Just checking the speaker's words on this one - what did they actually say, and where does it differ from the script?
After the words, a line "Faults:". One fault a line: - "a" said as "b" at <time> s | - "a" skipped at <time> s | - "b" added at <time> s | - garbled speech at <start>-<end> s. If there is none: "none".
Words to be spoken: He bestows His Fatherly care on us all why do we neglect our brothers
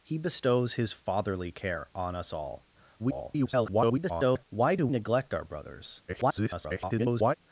He bestows His Fatherly care on us all [garbled] why do neglect our brothers [garbled]
Faults:
- garbled speech at 3.0-4.5 s
- "we" skipped at 4.9 s
- garbled speech at 6.1-7.3 s